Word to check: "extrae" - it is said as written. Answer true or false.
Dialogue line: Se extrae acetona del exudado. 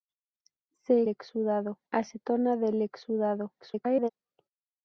false